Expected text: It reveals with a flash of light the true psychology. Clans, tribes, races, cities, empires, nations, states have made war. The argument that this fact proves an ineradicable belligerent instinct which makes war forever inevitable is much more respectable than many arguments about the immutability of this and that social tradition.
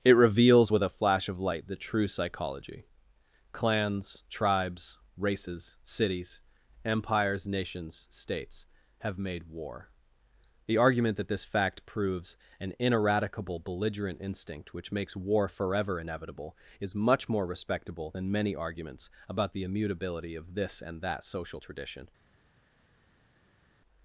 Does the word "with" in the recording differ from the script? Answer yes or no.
no